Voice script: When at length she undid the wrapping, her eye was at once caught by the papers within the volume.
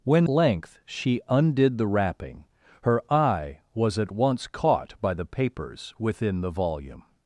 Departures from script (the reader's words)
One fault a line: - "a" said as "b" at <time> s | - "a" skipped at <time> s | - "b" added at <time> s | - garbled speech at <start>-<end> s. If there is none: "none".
- "at" skipped at 0.3 s